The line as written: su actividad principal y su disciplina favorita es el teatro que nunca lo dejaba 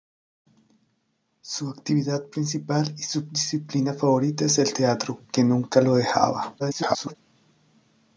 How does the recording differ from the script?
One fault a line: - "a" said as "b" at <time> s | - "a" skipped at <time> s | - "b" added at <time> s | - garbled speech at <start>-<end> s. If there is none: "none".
- garbled speech at 6.6-7.2 s